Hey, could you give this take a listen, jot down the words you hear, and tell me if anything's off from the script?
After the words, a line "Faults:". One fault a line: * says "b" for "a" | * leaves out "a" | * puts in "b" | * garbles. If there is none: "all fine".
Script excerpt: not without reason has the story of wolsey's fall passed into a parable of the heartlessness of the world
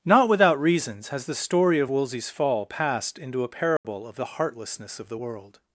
not without reasons has the story of wolsey's fall passed into a parable of the heartlessness of the world
Faults:
* says "reasons" for "reason"